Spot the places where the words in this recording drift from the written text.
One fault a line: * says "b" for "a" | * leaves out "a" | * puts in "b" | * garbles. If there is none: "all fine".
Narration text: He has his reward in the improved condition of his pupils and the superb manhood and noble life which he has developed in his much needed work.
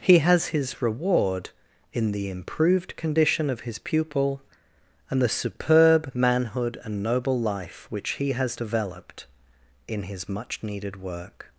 * says "pupil" for "pupils"